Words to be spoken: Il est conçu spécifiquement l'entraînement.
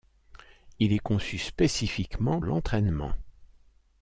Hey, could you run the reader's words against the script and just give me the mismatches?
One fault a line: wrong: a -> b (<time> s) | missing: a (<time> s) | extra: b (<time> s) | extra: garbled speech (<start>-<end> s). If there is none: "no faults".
no faults